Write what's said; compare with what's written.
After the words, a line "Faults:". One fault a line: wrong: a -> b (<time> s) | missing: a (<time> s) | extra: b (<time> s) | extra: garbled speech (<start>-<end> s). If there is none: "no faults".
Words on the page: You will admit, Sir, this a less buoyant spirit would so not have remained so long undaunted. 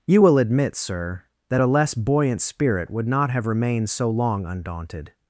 You will admit, Sir, that a less buoyant spirit would not have remained so long undaunted.
Faults:
wrong: this -> that (1.5 s)
missing: so (3.1 s)